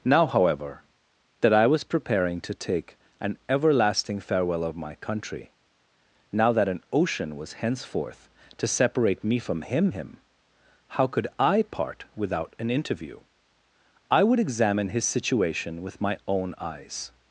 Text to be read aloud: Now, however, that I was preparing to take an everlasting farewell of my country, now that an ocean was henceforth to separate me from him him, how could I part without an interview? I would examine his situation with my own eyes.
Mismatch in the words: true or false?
false